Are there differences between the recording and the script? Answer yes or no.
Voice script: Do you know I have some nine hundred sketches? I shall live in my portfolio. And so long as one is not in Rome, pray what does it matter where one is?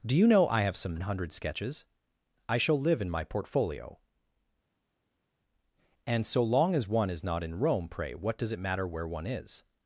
yes